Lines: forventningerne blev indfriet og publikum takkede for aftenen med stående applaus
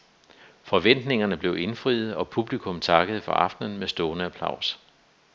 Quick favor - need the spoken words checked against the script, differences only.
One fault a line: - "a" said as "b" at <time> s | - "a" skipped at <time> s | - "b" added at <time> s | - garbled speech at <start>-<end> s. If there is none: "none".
none